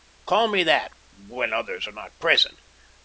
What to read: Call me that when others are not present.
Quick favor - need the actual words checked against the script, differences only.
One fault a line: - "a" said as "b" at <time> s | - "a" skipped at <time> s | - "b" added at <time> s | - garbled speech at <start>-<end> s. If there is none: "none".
none